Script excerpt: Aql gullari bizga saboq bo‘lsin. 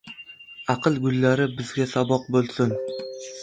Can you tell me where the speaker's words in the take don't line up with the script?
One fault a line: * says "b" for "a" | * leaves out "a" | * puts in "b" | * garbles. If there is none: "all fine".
all fine